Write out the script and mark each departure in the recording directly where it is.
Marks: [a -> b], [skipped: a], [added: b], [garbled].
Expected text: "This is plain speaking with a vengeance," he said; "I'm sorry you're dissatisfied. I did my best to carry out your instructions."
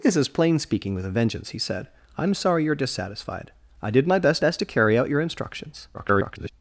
"This is plain speaking with a vengeance," he said; "I'm sorry you're dissatisfied. I did my best [added: best] to carry out your instructions." [garbled]